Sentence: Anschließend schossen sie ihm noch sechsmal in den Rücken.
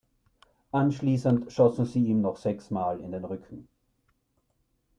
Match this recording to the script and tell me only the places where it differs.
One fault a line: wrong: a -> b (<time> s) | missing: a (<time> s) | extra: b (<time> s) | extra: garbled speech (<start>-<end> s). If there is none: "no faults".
no faults